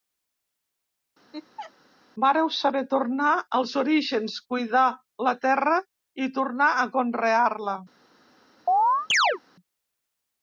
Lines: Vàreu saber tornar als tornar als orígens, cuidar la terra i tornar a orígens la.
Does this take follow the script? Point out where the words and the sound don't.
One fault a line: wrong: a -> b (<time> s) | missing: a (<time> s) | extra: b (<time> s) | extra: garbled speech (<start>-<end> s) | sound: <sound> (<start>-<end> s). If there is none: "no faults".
sound: laugh (1.3-1.7 s)
missing: tornar als (3.7 s)
wrong: orígens -> conrear (7.0 s)
sound: chirp (8.7-9.4 s)